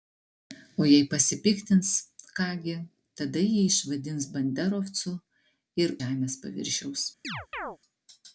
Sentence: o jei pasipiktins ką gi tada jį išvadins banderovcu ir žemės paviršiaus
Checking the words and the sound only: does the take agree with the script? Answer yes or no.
no